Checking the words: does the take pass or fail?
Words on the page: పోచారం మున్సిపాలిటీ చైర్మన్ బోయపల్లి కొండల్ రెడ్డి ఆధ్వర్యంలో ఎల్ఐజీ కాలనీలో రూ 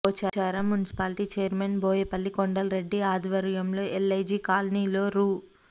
pass